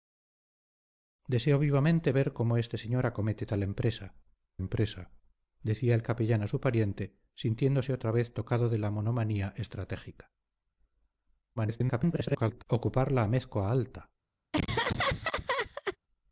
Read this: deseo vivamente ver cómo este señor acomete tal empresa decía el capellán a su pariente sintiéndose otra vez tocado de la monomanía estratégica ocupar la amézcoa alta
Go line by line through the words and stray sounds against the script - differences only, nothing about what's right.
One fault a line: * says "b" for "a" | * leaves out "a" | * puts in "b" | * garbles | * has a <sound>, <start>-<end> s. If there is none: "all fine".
* puts in "empresa"
* garbles
* has a laugh, 14.5-16.0 s